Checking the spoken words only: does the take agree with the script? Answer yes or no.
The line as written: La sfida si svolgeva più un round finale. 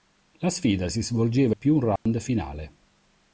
yes